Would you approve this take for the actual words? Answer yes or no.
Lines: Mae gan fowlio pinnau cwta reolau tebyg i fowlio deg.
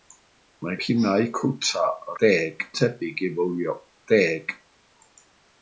no